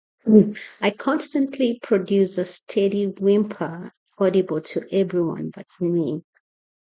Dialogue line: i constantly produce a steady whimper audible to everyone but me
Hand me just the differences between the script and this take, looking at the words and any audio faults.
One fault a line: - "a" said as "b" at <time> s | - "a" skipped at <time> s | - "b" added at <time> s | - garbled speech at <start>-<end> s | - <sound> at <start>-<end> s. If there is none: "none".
none